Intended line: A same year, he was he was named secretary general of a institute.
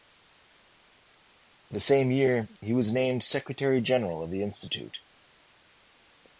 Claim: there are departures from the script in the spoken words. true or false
true